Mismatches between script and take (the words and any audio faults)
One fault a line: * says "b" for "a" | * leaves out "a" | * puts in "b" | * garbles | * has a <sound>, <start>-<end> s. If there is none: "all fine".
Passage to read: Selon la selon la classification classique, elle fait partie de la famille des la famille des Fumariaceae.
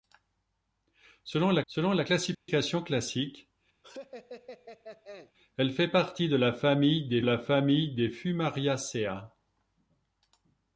* has a dropout, 2.3-2.5 s
* has a laugh, 3.8-5.3 s